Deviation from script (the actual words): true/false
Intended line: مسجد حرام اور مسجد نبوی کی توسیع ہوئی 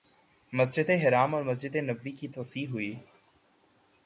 false